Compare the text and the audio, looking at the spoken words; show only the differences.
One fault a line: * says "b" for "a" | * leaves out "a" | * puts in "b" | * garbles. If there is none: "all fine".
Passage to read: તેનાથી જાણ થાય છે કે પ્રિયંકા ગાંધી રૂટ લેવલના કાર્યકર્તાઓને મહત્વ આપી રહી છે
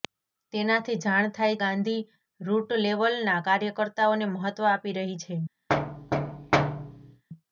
* leaves out "છે કે પ્રિયંકા"